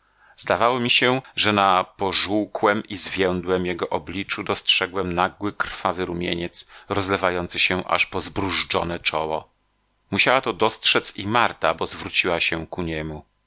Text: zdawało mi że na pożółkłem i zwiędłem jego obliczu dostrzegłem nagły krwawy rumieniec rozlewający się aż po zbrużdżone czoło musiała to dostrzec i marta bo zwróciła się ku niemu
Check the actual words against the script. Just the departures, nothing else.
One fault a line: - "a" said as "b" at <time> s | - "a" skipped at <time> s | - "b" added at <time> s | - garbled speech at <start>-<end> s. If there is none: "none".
- "się" added at 0.9 s